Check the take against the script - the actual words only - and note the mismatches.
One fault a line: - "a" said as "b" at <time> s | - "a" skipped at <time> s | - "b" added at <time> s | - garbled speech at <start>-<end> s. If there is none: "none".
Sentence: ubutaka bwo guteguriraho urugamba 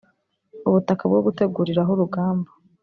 none